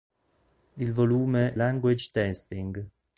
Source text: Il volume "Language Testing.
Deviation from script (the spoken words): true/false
false